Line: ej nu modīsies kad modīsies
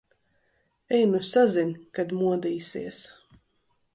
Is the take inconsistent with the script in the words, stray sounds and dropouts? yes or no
yes